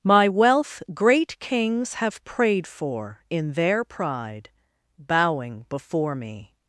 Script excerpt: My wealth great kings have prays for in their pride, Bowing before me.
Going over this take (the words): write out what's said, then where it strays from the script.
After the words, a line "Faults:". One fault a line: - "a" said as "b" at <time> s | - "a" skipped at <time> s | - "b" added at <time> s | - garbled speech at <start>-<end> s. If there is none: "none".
My wealth great kings have prayed for in their pride, Bowing before me.
Faults:
- "prays" said as "prayed" at 2.2 s